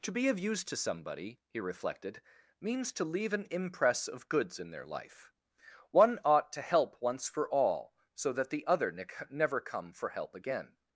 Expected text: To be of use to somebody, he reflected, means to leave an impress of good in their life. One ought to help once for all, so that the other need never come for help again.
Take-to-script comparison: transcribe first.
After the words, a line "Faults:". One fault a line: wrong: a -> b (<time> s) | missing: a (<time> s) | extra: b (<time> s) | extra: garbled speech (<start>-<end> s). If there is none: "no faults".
To be of use to somebody, he reflected, means to leave an impress of goods in their life. One ought to help once for all, so that the other ne never come for help again.
Faults:
wrong: good -> goods (4.3 s)
wrong: need -> ne (8.9 s)